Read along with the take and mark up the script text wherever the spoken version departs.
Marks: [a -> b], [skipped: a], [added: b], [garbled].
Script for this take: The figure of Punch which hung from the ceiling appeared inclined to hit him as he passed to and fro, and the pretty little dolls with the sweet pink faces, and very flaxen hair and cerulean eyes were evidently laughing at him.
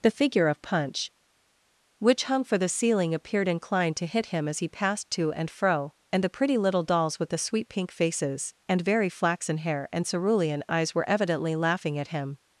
The figure of Punch which hung [from -> for] the ceiling appeared inclined to hit him as he passed to and fro, and the pretty little dolls with the sweet pink faces, and very flaxen hair and cerulean eyes were evidently laughing at him.